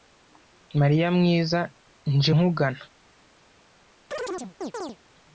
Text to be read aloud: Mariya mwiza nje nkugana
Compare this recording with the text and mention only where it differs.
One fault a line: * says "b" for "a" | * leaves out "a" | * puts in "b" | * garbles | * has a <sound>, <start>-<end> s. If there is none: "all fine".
* has a chirp, 4.1-5.0 s